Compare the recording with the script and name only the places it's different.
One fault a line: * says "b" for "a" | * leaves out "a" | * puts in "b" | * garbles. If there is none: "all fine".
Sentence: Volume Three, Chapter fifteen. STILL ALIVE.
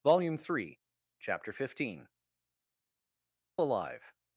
* leaves out "STILL"